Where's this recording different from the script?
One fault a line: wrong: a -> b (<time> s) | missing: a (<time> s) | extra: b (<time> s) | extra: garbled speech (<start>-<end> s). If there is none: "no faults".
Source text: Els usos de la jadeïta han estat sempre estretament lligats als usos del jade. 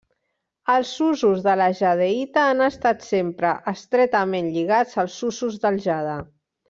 no faults